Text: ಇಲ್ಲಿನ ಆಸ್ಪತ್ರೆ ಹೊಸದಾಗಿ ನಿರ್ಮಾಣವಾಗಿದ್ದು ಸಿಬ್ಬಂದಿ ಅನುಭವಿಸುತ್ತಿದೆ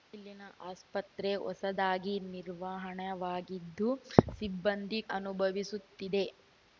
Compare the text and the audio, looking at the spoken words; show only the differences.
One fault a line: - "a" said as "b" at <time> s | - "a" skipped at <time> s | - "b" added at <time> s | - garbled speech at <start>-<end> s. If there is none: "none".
none